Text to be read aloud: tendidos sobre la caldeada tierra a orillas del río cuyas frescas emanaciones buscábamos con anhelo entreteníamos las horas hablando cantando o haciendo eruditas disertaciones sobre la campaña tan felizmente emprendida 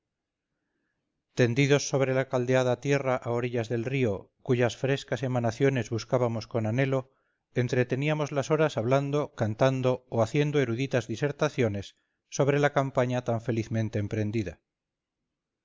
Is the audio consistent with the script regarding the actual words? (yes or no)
yes